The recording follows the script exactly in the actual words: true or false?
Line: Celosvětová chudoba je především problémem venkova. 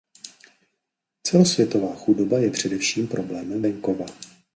true